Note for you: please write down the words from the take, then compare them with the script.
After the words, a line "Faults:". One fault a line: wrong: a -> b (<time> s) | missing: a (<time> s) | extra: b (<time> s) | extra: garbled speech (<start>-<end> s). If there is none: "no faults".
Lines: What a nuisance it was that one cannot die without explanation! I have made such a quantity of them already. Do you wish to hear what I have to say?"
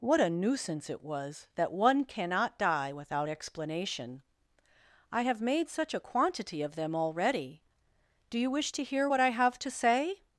What a nuisance it was that one cannot die without explanation! I have made such a quantity of them already. Do you wish to hear what I have to say?"
Faults:
no faults